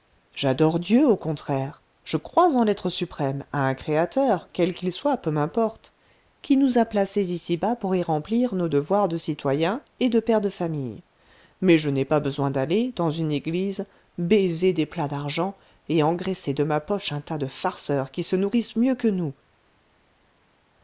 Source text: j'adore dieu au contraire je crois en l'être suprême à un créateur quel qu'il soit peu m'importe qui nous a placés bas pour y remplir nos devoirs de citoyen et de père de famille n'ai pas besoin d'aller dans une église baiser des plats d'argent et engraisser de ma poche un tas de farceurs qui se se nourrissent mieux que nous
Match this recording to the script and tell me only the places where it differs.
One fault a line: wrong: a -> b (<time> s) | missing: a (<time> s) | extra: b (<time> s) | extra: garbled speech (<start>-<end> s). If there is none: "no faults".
extra: ici (7.3 s)
extra: mais je (11.6 s)
missing: se (18.4 s)